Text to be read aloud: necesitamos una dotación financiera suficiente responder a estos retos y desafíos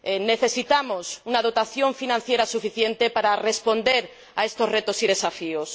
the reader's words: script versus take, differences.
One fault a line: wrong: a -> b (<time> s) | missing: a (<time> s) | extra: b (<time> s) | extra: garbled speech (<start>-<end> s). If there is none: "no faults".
extra: para (3.1 s)